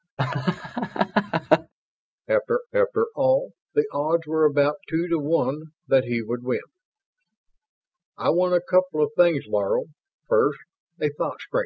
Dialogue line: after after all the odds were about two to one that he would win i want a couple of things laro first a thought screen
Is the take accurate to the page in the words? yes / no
yes